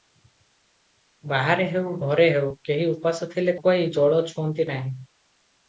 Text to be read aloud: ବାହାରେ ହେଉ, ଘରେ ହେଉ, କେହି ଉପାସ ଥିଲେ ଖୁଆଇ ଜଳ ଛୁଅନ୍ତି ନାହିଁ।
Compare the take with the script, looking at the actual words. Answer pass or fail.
pass